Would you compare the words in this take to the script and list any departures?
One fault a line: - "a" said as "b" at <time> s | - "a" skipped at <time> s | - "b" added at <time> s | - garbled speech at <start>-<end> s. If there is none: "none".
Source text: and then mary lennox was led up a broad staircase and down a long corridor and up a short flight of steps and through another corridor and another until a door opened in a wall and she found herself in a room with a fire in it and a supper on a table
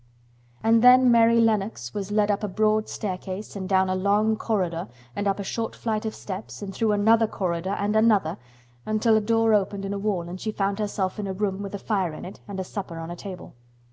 none